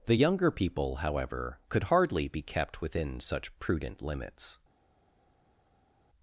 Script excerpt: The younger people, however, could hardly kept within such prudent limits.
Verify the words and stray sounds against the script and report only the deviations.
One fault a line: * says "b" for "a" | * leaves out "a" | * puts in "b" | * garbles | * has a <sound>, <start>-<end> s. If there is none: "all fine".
* puts in "be"